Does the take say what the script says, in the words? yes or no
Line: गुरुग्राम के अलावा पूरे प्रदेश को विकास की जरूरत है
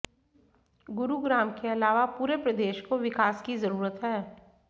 yes